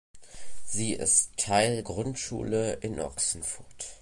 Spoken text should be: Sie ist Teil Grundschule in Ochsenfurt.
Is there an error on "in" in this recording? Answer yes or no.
no